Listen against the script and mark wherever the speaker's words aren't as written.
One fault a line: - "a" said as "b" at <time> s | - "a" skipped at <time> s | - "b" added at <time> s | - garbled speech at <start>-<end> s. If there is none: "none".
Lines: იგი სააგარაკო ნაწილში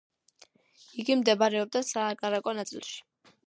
- "მდებარეობდა" added at 1.2 s